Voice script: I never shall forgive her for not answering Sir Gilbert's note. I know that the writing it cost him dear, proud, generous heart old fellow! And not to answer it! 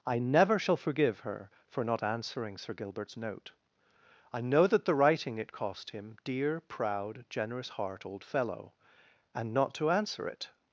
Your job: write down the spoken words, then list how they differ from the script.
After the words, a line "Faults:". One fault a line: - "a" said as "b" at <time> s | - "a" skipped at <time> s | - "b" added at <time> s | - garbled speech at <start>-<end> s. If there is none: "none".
I never shall forgive her for not answering Sir Gilbert's note. I know that the writing it cost him dear, proud, generous heart old fellow! And not to answer it!
Faults:
none